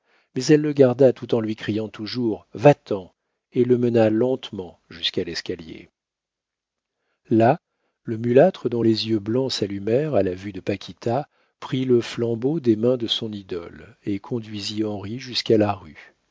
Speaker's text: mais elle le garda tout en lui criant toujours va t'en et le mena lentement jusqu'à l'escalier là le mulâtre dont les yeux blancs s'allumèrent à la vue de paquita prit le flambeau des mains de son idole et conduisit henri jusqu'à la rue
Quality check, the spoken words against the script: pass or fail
pass